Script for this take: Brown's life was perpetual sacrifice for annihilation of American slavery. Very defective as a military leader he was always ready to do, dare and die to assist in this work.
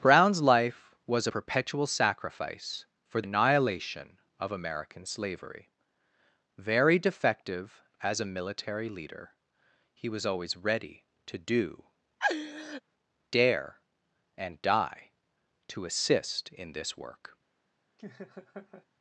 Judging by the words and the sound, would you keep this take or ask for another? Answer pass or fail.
fail